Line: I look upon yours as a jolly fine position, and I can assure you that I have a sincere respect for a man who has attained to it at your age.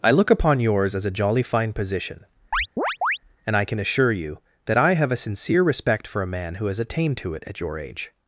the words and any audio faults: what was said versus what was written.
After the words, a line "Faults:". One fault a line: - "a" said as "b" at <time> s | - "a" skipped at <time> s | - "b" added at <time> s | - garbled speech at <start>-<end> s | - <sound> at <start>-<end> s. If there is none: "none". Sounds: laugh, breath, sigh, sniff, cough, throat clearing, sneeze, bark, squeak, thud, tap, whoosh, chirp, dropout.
I look upon yours as a jolly fine position, and I can assure you that I have a sincere respect for a man who has attained to it at your age.
Faults:
- chirp at 2.5-3.2 s